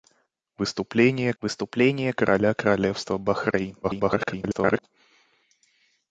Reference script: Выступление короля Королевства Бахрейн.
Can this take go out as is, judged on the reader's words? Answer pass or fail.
fail